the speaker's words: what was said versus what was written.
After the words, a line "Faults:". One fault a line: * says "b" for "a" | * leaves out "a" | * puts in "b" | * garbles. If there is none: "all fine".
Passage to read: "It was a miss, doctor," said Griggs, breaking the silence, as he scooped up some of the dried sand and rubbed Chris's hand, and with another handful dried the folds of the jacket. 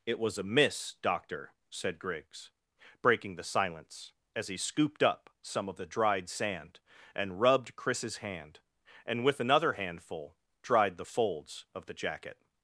"It was a miss, doctor," said Griggs, breaking the silence, as he scooped up some of the dried sand and rubbed Chris's hand, and with another handful dried the folds of the jacket.
Faults:
all fine